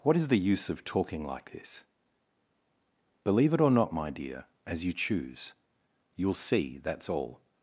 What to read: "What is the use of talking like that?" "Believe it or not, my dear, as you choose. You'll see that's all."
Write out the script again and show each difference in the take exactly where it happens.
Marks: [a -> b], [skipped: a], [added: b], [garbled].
"What is the use of talking like [that?" -> this] "Believe it or not, my dear, as you choose. You'll see that's all."